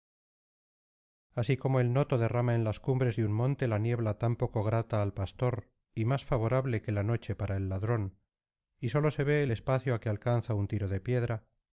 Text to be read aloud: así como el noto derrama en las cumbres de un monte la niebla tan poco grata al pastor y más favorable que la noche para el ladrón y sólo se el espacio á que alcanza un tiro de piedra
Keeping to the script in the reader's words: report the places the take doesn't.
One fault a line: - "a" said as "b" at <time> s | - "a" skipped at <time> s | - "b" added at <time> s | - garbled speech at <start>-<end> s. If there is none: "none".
- "ve" added at 9.2 s